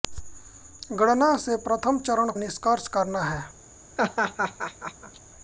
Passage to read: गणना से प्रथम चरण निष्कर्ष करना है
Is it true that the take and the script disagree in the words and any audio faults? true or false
true